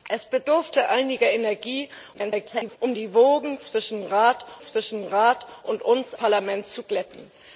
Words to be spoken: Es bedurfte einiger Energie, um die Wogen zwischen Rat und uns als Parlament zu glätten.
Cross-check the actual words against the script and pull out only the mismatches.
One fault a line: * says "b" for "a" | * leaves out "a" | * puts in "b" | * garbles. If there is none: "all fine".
* garbles
* puts in "zwischen Rat"
* leaves out "als"